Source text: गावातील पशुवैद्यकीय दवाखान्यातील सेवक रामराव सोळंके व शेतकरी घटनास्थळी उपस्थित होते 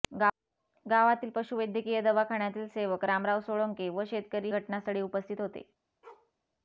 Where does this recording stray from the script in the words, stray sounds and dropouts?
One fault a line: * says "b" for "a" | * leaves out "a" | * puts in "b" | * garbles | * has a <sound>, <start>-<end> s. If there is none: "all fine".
* has a bark, 6.0-6.3 s